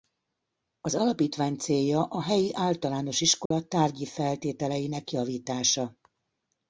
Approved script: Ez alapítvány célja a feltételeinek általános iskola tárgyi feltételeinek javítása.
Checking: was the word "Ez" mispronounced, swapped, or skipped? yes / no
yes